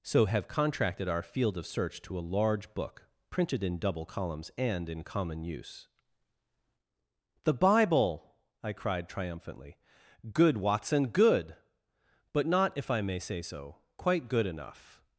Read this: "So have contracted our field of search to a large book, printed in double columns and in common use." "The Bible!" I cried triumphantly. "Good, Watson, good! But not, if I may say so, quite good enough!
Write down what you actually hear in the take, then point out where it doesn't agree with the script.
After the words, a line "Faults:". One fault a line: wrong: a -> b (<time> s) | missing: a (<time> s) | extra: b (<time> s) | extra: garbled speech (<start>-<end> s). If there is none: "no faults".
"So have contracted our field of search to a large book, printed in double columns and in common use." "The Bible!" I cried triumphantly. "Good, Watson, good! But not, if I may say so, quite good enough!
Faults:
no faults